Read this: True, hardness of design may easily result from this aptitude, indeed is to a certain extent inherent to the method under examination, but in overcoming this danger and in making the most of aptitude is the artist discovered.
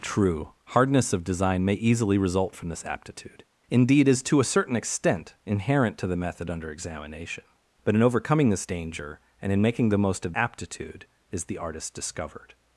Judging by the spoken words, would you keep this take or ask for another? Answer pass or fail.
pass